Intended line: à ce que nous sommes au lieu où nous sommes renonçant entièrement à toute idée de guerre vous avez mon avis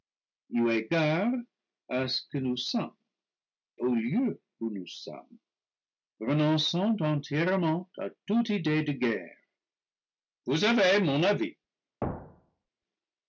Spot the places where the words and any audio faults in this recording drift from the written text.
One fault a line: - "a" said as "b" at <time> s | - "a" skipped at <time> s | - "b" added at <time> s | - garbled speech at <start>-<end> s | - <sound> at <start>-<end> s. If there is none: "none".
- thud at 12.0-12.7 s